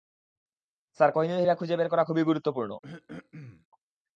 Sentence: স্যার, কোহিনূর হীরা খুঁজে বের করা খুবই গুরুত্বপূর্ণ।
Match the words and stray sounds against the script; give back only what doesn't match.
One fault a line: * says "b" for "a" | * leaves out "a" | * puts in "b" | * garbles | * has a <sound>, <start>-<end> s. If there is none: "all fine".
* has a throat clearing, 2.8-3.7 s